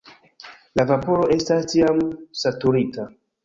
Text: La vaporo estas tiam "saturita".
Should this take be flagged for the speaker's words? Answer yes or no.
no